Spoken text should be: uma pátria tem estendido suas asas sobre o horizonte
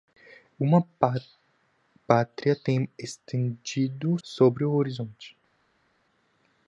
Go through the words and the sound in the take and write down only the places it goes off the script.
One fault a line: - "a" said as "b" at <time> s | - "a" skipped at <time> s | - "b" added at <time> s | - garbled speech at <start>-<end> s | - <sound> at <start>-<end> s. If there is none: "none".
- "suas asas" skipped at 4.2 s